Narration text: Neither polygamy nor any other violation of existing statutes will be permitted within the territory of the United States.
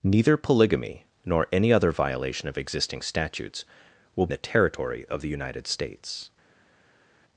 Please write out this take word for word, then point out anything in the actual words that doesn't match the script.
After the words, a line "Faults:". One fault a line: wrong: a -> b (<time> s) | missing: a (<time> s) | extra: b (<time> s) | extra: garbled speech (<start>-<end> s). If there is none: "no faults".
Neither polygamy nor any other violation of existing statutes will the territory of the United States.
Faults:
missing: be permitted within (4.3 s)